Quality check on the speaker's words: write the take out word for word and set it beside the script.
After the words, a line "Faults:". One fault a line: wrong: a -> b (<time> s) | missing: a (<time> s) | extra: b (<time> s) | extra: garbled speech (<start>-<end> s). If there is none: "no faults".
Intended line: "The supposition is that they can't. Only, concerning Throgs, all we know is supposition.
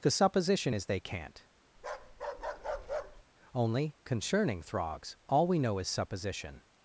"The supposition is they can't. Only, concerning Throgs, all we know is supposition.
Faults:
missing: that (0.8 s)